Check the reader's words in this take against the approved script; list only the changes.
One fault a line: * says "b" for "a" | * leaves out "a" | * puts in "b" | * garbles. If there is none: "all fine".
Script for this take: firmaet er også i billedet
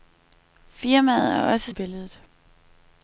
all fine